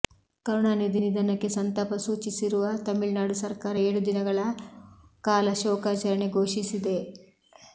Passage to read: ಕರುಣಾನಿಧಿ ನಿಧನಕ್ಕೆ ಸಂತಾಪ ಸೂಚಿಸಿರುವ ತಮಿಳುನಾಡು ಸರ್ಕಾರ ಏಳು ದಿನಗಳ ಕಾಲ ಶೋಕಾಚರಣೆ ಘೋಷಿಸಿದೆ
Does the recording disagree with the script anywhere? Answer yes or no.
no